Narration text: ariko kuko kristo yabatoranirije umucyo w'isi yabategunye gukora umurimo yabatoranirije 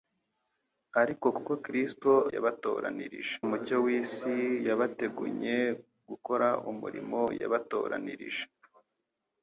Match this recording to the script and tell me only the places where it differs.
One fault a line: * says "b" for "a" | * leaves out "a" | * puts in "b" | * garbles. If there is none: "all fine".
all fine